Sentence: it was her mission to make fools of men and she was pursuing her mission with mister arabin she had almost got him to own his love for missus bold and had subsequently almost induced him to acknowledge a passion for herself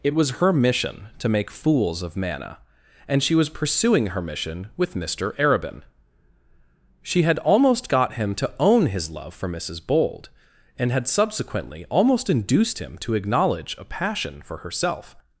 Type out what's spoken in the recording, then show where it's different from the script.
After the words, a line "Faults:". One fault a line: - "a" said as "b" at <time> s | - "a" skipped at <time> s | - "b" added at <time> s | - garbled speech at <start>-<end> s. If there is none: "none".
it was her mission to make fools of mana and she was pursuing her mission with mister arabin she had almost got him to own his love for missus bold and had subsequently almost induced him to acknowledge a passion for herself
Faults:
- "men" said as "mana" at 2.2 s